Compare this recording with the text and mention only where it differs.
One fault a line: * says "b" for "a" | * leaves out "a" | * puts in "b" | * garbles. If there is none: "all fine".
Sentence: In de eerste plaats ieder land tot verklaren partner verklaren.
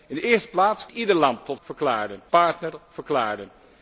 all fine